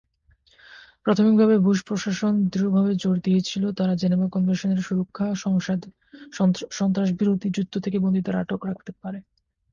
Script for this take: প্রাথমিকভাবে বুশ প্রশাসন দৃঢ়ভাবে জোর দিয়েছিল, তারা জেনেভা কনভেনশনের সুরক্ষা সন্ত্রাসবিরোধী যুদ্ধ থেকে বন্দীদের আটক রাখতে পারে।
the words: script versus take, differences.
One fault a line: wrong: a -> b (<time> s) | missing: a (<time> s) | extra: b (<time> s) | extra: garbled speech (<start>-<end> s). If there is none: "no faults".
no faults